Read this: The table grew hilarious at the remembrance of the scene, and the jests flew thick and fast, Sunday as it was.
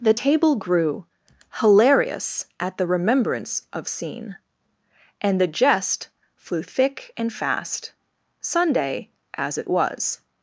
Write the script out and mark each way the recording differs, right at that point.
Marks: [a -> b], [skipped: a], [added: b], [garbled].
The table grew hilarious at the remembrance of [skipped: the] scene, and the [jests -> jest] flew thick and fast, Sunday as it was.